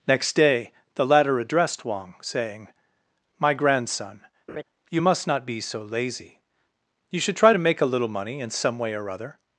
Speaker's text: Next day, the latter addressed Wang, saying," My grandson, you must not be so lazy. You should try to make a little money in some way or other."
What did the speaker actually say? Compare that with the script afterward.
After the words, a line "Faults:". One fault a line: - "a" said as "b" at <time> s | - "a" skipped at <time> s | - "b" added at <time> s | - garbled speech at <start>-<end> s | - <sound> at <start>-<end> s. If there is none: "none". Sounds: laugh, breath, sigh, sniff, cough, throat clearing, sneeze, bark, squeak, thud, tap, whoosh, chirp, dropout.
Next day, the latter addressed Wang, saying," My grandson, you must not be so lazy. You should try to make a little money in some way or other."
Faults:
- laugh at 4.5-4.6 s